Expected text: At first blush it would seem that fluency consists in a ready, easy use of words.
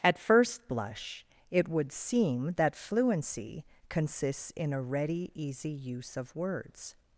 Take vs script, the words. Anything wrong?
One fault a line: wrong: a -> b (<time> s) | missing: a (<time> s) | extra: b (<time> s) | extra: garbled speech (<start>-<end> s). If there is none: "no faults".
no faults